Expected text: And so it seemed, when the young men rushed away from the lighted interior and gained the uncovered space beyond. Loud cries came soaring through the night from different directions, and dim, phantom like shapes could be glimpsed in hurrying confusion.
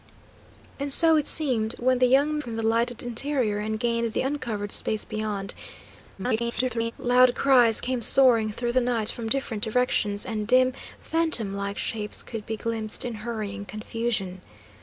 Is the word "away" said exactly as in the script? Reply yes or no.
no